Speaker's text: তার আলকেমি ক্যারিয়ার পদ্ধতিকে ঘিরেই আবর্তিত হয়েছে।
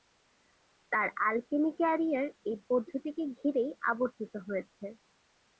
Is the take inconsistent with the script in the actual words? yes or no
yes